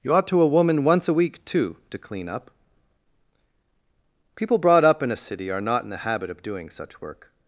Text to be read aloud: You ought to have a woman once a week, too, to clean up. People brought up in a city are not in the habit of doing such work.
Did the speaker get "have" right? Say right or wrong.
wrong